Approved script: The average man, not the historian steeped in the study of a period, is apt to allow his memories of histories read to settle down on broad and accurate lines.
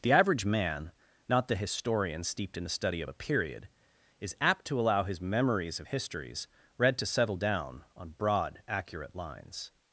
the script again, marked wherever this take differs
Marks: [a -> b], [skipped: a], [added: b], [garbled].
The average man, not the historian steeped in the study of a period, is apt to allow his memories of histories read to settle down on broad [skipped: and] accurate lines.